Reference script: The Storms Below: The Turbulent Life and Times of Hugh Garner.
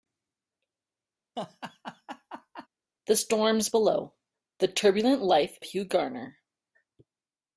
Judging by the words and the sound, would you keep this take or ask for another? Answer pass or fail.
fail